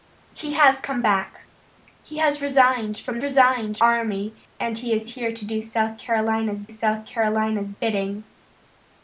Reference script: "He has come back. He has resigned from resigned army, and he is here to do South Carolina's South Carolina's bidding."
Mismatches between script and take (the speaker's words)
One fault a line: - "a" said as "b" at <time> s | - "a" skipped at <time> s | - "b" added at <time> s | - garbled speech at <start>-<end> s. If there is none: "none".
none